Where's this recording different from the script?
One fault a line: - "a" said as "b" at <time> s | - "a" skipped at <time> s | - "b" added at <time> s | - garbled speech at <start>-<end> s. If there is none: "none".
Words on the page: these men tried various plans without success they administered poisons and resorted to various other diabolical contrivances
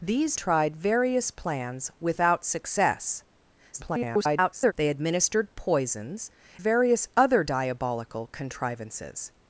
- "men" skipped at 0.4 s
- garbled speech at 3.7-4.7 s
- "and resorted to" skipped at 6.3 s